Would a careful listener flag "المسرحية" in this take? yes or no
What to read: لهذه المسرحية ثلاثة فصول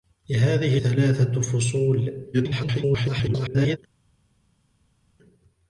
yes